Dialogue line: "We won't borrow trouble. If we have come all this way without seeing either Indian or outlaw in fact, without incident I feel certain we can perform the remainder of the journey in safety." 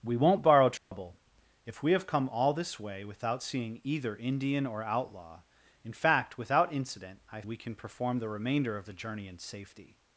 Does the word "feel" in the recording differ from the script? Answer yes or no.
yes